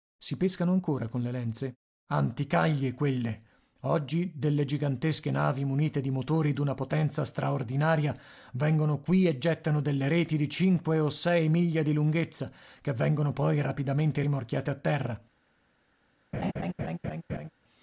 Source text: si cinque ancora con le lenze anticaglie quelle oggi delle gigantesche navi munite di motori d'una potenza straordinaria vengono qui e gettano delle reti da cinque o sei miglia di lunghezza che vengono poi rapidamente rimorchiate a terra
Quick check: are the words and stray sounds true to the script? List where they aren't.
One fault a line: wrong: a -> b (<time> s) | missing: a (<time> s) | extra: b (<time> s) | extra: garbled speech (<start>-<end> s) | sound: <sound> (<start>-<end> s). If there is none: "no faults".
wrong: cinque -> pescano (0.4 s)
wrong: da -> di (10.4 s)
sound: laugh (16.3-17.5 s)